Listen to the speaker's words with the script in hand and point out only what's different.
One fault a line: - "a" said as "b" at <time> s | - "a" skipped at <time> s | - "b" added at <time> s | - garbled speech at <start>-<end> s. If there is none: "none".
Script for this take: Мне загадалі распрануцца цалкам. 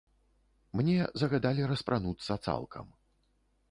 none